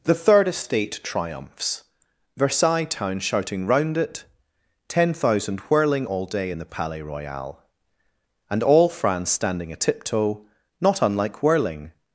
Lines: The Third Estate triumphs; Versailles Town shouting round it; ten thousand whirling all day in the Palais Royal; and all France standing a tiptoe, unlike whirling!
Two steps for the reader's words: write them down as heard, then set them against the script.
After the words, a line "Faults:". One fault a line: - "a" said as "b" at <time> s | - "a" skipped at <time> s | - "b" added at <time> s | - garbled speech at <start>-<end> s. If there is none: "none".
The Third Estate triumphs; Versailles Town shouting round it; ten thousand whirling all day in the Palais Royal; and all France standing a tiptoe, not unlike whirling!
Faults:
- "not" added at 10.8 s